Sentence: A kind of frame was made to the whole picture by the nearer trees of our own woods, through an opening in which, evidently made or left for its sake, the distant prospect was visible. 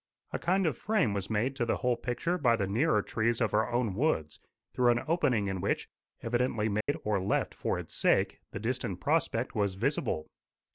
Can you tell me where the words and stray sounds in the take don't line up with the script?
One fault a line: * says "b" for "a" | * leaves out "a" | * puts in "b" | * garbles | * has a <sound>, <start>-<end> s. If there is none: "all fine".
* has a dropout, 6.8-6.9 s